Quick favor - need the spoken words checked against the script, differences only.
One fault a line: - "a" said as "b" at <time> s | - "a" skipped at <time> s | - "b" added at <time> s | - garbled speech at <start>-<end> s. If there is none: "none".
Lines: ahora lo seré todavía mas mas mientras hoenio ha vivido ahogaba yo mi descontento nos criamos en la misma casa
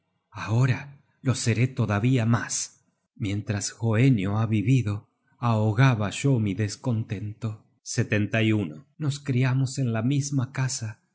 - "mas" skipped at 2.9 s